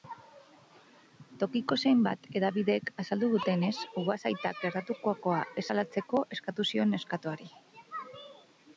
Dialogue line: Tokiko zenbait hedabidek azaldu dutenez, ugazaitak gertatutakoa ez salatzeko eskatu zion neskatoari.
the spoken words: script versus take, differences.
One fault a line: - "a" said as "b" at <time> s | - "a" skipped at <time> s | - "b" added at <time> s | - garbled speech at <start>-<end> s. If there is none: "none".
none